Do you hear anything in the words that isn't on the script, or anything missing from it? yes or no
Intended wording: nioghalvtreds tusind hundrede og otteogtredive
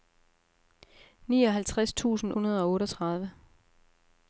no